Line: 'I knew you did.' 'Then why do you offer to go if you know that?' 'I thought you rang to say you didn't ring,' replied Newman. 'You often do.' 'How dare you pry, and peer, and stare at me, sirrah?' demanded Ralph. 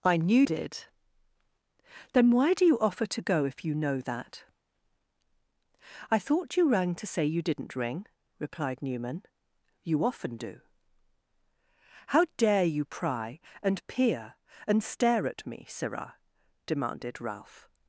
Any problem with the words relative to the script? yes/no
yes